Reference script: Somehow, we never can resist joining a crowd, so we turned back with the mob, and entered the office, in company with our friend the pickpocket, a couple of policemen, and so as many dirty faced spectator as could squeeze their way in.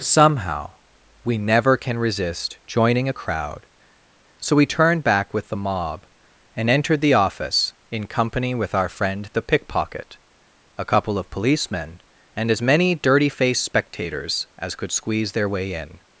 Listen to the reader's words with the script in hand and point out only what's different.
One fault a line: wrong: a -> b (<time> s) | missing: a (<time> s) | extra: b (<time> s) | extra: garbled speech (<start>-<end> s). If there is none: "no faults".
missing: so (12.5 s)
wrong: spectator -> spectators (13.6 s)